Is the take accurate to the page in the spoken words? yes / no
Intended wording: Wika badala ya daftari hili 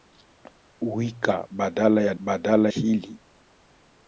no